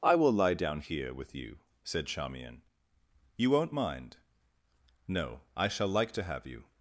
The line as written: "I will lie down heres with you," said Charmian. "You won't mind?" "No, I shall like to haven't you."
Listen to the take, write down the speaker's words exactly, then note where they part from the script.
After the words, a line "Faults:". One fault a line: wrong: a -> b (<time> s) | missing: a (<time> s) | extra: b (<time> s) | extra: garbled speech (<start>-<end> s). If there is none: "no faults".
"I will lie down here with you," said Charmian. "You won't mind?" "No, I shall like to have you."
Faults:
wrong: heres -> here (0.8 s)
wrong: haven't -> have (6.2 s)